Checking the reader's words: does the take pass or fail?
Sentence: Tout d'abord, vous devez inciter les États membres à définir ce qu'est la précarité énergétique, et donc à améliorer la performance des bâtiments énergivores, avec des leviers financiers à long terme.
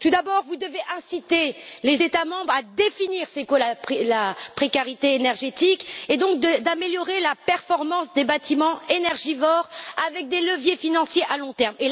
pass